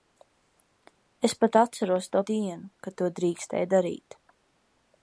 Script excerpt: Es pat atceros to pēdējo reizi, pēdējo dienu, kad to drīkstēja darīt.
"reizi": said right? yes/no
no